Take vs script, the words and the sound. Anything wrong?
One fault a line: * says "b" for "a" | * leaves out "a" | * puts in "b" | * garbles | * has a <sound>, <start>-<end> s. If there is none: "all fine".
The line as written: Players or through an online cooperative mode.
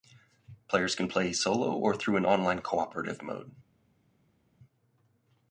* puts in "can play solo"